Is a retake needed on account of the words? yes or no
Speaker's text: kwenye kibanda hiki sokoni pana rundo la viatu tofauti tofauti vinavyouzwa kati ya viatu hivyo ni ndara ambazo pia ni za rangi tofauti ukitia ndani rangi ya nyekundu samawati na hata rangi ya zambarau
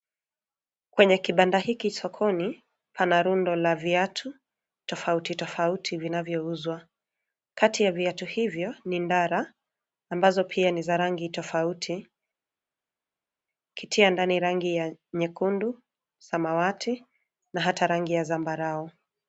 no